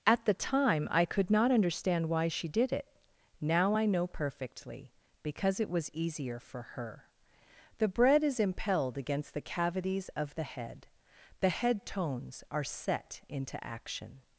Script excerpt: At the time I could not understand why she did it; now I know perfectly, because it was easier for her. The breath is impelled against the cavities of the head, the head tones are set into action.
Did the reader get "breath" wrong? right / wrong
wrong